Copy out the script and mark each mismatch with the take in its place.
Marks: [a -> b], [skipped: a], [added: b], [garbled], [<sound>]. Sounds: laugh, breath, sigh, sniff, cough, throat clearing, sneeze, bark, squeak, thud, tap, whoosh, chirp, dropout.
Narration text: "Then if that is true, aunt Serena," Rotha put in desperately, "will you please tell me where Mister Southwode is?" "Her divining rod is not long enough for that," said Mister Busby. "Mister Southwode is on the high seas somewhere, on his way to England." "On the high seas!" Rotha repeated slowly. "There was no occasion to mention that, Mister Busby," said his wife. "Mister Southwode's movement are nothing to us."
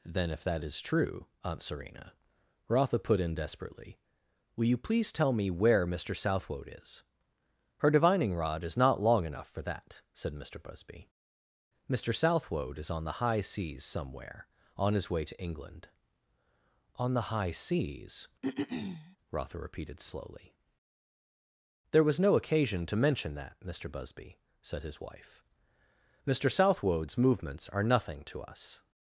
"Then if that is true, aunt Serena," Rotha put in desperately, "will you please tell me where Mister Southwode is?" "Her divining rod is not long enough for that," said Mister Busby. "Mister Southwode is on the high seas somewhere, on his way to England." "On the high seas!" [throat clearing] Rotha repeated slowly. "There was no occasion to mention that, Mister Busby," said his wife. "Mister Southwode's [movement -> movements] are nothing to us."